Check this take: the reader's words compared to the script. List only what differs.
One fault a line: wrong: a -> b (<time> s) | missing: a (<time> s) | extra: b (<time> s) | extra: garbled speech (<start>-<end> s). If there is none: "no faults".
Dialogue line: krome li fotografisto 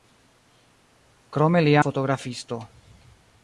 no faults